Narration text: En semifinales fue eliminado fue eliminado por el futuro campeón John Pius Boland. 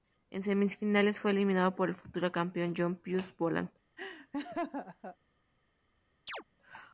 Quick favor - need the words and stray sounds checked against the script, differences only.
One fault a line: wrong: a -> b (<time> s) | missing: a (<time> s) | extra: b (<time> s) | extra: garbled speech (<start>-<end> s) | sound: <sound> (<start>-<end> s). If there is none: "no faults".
missing: fue eliminado (1.8 s)
sound: laugh (4.0-5.2 s)
sound: chirp (6.3-6.4 s)